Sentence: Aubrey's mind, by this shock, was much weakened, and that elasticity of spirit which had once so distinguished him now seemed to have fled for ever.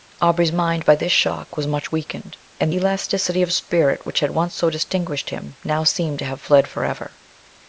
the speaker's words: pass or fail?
fail